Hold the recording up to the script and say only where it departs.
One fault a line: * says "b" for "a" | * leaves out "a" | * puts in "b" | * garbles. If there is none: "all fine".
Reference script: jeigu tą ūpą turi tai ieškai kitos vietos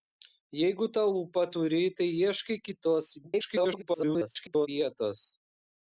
* garbles